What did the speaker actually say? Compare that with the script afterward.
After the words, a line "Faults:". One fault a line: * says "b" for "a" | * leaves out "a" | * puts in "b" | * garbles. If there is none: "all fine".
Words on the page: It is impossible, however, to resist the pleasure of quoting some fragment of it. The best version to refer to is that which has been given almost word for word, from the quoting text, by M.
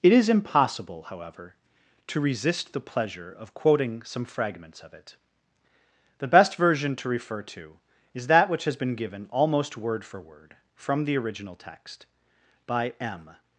It is impossible, however, to resist the pleasure of quoting some fragments of it. The best version to refer to is that which has been given almost word for word, from the original text, by M.
Faults:
* says "fragments" for "fragment"
* says "original" for "quoting"